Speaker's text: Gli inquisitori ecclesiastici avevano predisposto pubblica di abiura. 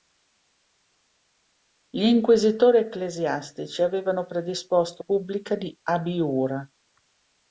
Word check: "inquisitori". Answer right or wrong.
right